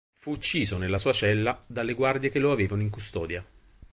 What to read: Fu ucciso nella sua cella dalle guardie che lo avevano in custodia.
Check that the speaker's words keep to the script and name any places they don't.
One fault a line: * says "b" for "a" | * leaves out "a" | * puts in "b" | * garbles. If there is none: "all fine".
all fine